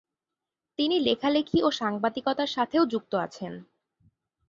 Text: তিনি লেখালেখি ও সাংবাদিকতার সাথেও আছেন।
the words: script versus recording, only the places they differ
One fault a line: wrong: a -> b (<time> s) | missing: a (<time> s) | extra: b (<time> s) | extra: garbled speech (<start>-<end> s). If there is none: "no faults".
extra: যুক্ত (2.9 s)